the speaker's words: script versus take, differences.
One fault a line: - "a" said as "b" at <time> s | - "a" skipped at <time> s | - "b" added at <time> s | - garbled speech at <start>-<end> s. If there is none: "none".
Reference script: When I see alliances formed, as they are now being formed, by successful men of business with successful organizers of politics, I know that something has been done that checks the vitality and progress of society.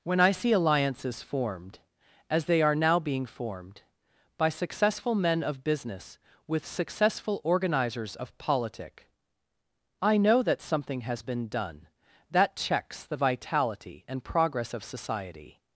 - "politics" said as "politic" at 8.4 s